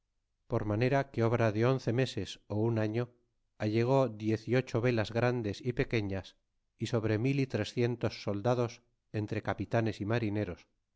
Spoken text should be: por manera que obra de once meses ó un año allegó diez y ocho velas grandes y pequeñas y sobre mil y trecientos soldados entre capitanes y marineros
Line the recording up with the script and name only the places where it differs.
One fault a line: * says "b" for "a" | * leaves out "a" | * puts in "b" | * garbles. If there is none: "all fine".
all fine